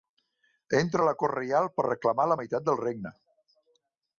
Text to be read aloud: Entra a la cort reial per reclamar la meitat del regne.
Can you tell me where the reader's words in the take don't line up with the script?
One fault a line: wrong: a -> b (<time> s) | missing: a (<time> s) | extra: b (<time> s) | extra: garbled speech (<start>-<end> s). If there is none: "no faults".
no faults